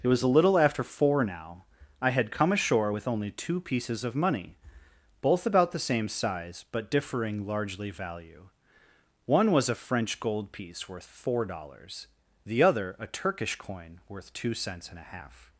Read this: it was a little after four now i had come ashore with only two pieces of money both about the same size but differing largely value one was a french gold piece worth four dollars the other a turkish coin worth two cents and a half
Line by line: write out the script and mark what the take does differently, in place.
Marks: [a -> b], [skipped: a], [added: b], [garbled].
it was a little after four now i had come ashore with only two pieces of money both about the same size but differing largely value one was a french gold piece worth four dollars the other a turkish coin worth two cents and a half